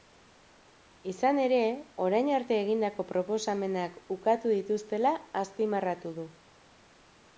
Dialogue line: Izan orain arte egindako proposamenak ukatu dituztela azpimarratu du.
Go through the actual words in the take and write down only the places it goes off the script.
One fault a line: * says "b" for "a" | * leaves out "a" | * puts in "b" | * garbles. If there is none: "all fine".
* puts in "ere"